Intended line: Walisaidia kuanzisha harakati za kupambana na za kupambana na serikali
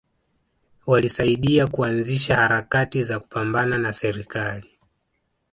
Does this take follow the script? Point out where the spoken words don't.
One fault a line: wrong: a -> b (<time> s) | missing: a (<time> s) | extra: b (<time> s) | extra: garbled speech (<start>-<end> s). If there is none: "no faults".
missing: za kupambana na (3.9 s)